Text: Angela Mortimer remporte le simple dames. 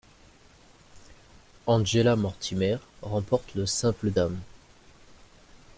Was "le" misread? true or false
false